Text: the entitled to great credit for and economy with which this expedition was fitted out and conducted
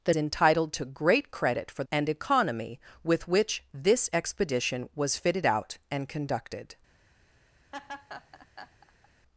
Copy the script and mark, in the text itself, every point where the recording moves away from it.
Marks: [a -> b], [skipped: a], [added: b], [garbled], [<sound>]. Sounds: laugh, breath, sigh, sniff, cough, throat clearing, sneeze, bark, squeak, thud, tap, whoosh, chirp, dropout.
the entitled to great credit for and economy with which this expedition was fitted out and conducted [laugh]